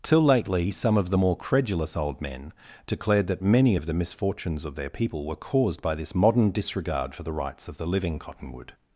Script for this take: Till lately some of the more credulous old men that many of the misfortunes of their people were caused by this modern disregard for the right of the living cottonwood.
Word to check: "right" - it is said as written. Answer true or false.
false